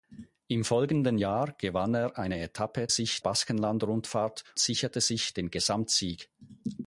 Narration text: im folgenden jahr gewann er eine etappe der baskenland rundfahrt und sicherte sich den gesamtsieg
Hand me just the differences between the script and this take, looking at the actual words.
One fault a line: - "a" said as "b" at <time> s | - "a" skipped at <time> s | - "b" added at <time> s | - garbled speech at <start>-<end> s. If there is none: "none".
- "der" said as "sich" at 2.9 s
- "und" skipped at 4.4 s